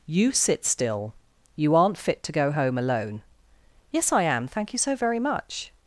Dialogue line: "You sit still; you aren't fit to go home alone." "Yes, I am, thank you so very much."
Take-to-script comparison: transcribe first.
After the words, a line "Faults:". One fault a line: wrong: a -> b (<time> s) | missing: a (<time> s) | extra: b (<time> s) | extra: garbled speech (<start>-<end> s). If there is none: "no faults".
"You sit still; you aren't fit to go home alone." "Yes, I am, thank you so very much."
Faults:
no faults